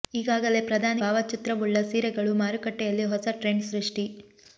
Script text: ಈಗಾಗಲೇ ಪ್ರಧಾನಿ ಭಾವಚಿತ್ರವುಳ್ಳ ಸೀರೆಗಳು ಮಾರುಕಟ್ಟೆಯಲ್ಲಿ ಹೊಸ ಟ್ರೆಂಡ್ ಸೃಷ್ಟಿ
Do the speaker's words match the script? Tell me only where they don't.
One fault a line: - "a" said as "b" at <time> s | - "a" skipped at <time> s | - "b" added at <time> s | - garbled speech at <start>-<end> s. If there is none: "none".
none